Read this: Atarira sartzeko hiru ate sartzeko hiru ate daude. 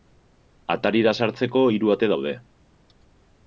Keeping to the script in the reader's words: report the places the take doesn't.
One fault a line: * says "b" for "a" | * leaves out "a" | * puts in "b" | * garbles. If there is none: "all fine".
* leaves out "sartzeko hiru ate"